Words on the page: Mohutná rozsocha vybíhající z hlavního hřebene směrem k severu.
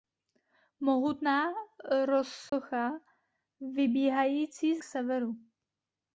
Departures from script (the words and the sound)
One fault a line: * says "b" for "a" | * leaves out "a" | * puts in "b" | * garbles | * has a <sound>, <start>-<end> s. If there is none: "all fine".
* has a dropout, 2.5-2.5 s
* leaves out "hlavního hřebene směrem"